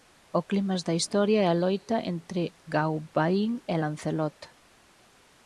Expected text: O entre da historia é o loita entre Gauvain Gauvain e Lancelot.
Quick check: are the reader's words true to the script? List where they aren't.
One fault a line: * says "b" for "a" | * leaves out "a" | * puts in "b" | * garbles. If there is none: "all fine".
* says "clímax" for "entre"
* says "a" for "o"
* leaves out "Gauvain"